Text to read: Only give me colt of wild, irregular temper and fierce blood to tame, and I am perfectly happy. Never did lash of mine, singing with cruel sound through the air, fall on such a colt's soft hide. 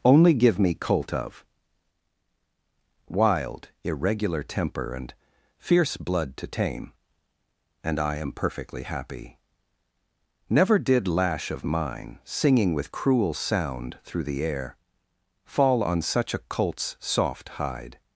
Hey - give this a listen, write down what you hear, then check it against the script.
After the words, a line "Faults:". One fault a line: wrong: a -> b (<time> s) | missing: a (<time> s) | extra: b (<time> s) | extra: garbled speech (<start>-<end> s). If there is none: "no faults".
Only give me colt of wild, irregular temper and fierce blood to tame, and I am perfectly happy. Never did lash of mine, singing with cruel sound through the air, fall on such a colt's soft hide.
Faults:
no faults